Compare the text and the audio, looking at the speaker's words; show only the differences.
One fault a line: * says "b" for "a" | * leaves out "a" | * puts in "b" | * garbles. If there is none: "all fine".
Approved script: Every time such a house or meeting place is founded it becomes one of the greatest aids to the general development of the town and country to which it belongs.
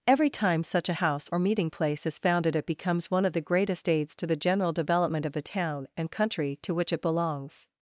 all fine